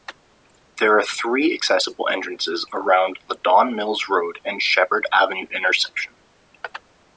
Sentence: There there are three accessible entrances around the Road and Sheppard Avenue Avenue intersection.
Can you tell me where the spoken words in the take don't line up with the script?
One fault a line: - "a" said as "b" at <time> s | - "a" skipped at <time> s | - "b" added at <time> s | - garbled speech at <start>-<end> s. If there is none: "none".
- "there" skipped at 1.0 s
- "Don Mills" added at 3.4 s
- "Avenue" skipped at 5.5 s